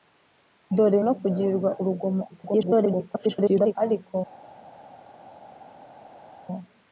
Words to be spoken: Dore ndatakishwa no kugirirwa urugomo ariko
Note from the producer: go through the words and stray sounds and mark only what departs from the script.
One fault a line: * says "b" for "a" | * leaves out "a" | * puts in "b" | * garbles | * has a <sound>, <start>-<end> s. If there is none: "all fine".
* leaves out "ndatakishwa"
* garbles